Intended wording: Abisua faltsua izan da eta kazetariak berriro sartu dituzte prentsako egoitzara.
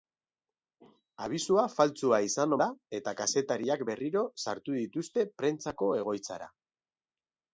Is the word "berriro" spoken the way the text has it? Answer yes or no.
yes